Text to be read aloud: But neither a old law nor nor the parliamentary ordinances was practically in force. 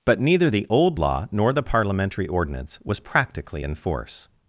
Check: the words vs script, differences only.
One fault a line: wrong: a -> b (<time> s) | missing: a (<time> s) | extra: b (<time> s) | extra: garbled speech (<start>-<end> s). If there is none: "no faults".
wrong: a -> the (0.5 s)
missing: nor (1.5 s)
wrong: ordinances -> ordinance (2.3 s)